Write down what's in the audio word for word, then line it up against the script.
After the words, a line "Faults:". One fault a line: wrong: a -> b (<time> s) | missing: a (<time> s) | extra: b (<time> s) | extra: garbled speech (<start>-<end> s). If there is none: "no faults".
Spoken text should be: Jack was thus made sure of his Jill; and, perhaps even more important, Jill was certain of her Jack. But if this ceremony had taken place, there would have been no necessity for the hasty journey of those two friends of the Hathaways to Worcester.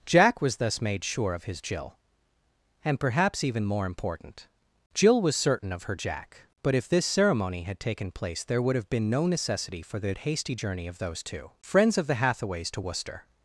Jack was thus made sure of his Jill; and, perhaps even more important, Jill was certain of her Jack. But if this ceremony had taken place, there would have been no necessity for the hasty journey of those two friends of the Hathaways to Worcester.
Faults:
no faults